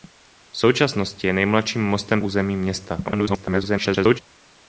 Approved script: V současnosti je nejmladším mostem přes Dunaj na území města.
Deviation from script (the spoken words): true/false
true